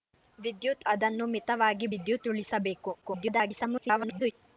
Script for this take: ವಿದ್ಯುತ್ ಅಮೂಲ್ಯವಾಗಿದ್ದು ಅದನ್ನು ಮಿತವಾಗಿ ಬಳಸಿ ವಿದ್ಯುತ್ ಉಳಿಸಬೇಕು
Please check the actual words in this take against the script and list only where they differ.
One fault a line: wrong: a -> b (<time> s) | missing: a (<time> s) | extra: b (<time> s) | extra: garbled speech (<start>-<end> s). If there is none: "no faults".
missing: ಅಮೂಲ್ಯವಾಗಿದ್ದು (0.8 s)
missing: ಬಳಸಿ (1.9 s)
extra: garbled speech (3.0-4.3 s)